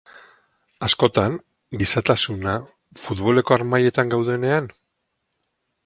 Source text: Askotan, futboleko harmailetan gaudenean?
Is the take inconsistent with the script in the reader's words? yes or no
yes